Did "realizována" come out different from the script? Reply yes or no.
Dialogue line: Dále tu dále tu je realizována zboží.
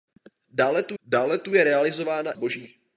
no